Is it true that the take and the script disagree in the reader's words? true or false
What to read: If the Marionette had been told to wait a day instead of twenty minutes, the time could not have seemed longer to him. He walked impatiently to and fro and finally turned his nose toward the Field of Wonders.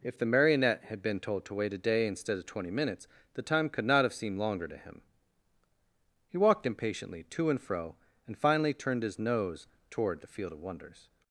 false